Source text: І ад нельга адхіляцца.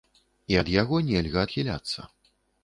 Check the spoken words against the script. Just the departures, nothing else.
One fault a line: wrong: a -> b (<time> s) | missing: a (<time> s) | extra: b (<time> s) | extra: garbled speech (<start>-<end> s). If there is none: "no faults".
extra: яго (0.7 s)